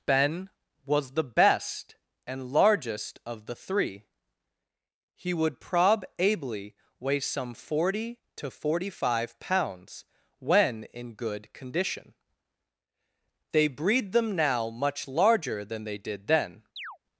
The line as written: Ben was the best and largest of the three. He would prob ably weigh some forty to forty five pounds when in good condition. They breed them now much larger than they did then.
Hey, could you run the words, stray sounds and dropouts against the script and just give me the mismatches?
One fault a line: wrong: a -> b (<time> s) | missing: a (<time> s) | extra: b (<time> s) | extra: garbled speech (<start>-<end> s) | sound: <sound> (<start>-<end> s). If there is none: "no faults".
sound: chirp (16.8-17.0 s)